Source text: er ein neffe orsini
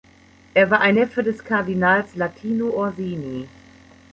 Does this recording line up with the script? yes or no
no